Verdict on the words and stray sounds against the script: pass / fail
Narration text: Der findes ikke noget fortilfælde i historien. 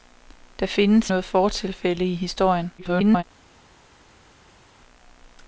fail